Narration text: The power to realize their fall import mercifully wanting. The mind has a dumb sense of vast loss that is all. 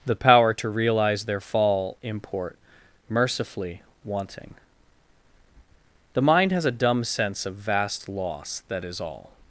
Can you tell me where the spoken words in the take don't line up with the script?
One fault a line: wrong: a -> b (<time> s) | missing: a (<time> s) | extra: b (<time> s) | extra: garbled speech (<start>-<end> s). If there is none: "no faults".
no faults